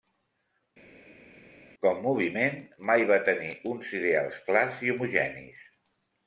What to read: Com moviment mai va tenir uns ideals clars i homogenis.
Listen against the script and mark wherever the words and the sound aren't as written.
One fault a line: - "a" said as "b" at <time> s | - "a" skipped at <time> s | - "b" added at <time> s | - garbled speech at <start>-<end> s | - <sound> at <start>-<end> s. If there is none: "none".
none